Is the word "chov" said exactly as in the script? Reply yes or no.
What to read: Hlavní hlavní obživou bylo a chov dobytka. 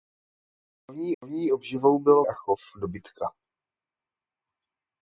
yes